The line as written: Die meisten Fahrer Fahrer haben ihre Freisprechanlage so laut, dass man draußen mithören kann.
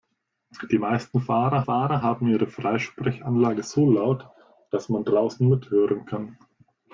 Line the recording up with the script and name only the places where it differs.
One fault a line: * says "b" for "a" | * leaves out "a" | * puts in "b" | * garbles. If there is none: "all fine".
all fine